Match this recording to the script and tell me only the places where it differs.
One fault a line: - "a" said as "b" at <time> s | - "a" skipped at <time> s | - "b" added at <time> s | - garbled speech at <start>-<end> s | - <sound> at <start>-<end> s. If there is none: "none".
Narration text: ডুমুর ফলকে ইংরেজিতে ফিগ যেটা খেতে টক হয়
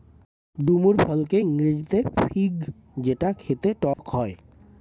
- dropout at 3.9-4.0 s